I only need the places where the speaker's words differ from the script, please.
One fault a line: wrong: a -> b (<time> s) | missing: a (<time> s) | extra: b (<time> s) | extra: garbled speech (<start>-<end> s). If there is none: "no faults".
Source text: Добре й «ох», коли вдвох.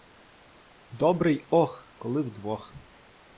no faults